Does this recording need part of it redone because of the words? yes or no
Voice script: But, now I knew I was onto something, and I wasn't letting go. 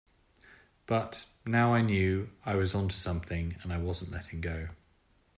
no